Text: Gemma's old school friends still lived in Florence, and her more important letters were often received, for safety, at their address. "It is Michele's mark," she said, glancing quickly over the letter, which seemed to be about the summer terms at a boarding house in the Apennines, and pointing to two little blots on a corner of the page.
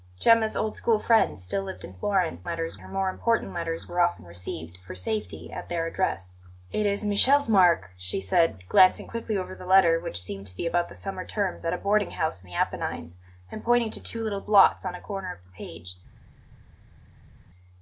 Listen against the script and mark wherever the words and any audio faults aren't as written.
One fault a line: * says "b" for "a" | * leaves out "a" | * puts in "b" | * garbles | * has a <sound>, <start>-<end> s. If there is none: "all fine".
* says "letters" for "and"